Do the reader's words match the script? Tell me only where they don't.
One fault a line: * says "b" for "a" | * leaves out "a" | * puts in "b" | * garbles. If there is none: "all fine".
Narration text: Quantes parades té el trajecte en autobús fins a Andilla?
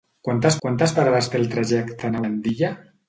* puts in "quantes"
* leaves out "autobús fins"